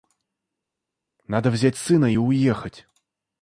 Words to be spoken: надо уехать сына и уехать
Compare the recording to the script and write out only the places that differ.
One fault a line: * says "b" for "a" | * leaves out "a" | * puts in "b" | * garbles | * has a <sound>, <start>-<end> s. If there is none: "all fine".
* says "взять" for "уехать"